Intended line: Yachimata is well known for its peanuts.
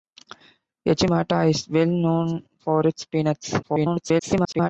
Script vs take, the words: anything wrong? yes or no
yes